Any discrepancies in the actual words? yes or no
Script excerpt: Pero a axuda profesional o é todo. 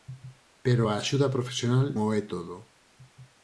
no